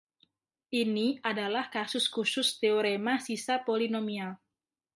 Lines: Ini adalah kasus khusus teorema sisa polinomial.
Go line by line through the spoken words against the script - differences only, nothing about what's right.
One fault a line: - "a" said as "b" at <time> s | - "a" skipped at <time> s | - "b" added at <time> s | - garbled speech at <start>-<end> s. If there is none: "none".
none